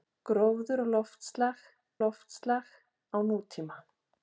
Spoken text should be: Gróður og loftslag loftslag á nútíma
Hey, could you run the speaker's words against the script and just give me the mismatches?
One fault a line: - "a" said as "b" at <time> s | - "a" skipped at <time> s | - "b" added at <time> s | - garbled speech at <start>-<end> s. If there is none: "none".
none